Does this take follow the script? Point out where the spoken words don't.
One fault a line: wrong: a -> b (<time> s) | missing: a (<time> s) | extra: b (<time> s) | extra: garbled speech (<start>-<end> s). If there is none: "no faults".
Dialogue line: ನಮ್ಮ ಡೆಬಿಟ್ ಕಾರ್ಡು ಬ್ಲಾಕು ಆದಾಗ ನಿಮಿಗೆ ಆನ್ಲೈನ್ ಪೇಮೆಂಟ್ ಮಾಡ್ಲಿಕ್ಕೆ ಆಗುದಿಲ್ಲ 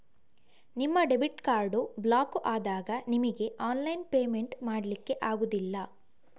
wrong: ನಮ್ಮ -> ನಿಮ್ಮ (0.8 s)